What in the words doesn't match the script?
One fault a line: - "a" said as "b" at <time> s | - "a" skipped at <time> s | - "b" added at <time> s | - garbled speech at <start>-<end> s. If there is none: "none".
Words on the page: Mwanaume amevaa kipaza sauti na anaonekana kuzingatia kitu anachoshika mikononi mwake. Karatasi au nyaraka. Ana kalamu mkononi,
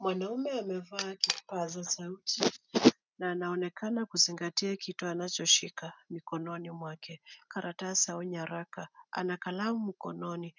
none